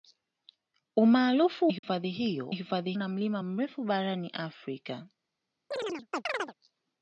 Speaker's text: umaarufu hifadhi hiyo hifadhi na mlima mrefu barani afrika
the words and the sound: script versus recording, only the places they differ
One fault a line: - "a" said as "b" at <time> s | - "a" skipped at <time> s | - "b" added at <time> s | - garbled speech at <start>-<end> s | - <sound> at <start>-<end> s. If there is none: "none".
- dropout at 1.8-1.8 s
- chirp at 5.7-6.5 s